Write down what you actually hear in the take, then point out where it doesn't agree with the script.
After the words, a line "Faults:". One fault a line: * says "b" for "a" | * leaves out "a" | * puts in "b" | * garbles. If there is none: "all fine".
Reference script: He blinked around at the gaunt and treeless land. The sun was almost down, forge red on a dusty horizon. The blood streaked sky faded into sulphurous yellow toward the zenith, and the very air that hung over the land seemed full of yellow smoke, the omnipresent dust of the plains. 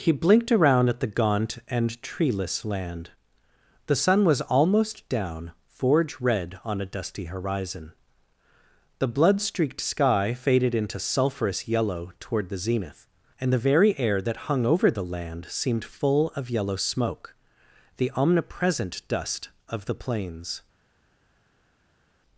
He blinked around at the gaunt and treeless land. The sun was almost down, forge red on a dusty horizon. The blood streaked sky faded into sulphurous yellow toward the zenith, and the very air that hung over the land seemed full of yellow smoke, the omnipresent dust of the plains.
Faults:
all fine